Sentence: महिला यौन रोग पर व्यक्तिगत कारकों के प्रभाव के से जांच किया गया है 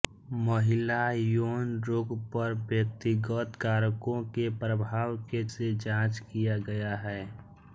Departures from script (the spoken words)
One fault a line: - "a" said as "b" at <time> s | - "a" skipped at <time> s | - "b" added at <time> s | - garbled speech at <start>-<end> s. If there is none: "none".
none